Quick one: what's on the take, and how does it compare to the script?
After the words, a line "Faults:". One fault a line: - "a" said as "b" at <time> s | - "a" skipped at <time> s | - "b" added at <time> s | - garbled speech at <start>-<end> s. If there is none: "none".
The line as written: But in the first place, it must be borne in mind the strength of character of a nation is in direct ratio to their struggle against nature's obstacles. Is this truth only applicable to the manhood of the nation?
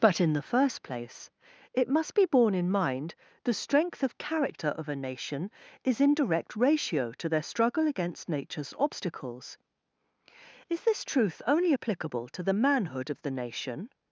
But in the first place, it must be borne in mind the strength of character of a nation is in direct ratio to their struggle against nature's obstacles. Is this truth only applicable to the manhood of the nation?
Faults:
none